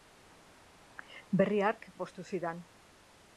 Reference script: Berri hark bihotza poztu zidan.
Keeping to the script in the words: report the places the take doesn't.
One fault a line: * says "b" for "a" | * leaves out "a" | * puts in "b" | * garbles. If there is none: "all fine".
* leaves out "bihotza"